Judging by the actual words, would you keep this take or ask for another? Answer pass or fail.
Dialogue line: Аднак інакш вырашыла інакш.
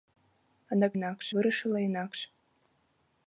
pass